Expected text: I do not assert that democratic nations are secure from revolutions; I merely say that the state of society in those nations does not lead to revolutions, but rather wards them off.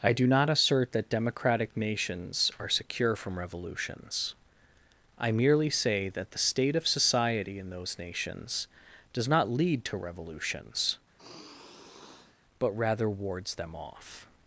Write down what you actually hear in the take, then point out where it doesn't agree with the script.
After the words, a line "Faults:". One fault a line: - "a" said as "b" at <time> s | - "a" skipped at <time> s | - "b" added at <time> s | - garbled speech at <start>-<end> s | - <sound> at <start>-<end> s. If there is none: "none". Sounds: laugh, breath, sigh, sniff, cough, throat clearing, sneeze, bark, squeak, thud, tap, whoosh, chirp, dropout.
I do not assert that democratic nations are secure from revolutions; I merely say that the state of society in those nations does not lead to revolutions, but rather wards them off.
Faults:
- sigh at 11.2-12.4 s